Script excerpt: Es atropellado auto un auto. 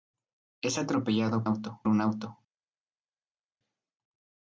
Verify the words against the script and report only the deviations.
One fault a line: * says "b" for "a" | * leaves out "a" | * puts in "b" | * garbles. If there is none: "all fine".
all fine